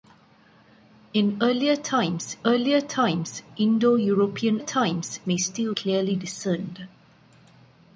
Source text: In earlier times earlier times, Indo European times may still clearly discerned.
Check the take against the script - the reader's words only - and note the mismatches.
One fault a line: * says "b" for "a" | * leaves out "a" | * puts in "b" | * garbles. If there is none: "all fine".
all fine